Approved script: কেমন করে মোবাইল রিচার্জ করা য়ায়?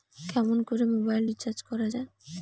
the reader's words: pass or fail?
pass